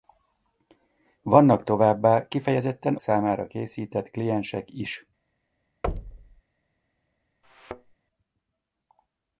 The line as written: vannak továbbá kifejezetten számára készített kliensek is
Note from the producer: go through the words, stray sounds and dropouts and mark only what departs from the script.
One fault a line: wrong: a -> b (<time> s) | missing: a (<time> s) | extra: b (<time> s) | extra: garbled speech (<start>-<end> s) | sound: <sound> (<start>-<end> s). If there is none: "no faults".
sound: thud (5.8-6.4 s)
sound: thud (7.4-8.0 s)